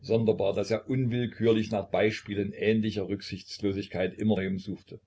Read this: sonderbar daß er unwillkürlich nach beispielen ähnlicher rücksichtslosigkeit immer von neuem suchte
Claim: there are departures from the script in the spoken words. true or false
true